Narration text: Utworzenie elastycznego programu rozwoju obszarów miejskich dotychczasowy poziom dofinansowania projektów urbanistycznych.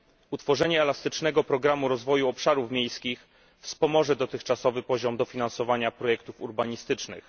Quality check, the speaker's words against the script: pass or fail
fail